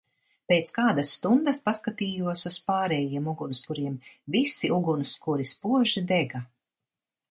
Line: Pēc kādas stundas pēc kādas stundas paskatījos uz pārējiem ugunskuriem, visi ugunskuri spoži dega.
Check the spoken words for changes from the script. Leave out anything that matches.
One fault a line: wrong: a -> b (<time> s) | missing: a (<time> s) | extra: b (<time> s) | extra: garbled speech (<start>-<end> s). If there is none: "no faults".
missing: pēc kādas stundas (1.6 s)